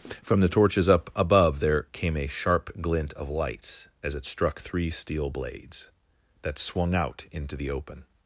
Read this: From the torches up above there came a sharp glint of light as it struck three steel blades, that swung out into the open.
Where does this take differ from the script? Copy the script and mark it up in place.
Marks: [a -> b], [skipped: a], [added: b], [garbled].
From the torches up above there came a sharp glint of [light -> lights] as it struck three steel blades, that swung out into the open.